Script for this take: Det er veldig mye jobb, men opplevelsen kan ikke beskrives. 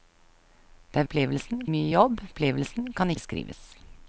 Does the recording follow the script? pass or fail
fail